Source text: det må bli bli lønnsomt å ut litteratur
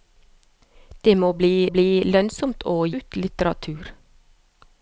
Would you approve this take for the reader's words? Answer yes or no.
yes